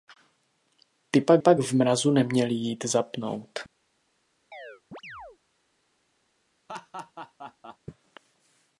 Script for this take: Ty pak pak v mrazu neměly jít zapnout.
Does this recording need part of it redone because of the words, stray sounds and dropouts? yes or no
yes